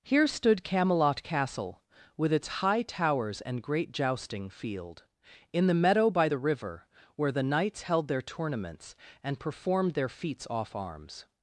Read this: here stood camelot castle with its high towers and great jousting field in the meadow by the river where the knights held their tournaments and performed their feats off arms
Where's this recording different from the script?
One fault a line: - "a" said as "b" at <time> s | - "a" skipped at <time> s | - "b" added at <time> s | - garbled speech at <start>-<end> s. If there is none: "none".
none